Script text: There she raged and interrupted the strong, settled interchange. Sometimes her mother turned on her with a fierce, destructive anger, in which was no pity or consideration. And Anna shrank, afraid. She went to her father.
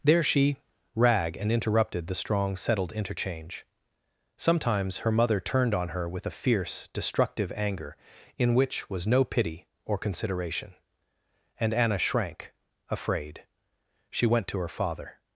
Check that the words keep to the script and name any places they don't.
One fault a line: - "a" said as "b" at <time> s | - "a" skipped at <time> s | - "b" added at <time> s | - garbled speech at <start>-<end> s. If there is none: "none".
- "raged" said as "rag" at 0.9 s